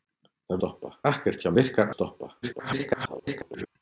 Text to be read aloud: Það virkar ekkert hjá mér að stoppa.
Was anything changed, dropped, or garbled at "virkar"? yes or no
yes